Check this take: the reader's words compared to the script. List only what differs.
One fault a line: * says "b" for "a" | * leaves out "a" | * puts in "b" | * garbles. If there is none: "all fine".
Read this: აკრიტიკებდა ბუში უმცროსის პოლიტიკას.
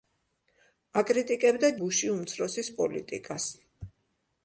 all fine